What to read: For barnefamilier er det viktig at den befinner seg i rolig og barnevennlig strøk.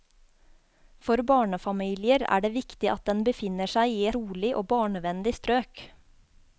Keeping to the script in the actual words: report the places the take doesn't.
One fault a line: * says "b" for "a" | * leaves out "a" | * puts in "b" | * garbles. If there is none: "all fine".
all fine